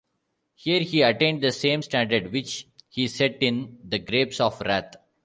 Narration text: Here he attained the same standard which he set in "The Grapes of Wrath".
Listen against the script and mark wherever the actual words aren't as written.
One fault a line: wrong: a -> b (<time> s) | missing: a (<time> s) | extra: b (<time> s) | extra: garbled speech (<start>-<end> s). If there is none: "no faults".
no faults